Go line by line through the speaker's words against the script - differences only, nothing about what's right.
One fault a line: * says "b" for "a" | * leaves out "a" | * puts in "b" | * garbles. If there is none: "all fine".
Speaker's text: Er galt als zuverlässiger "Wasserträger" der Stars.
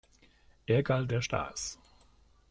* leaves out "als zuverlässiger Wasserträger"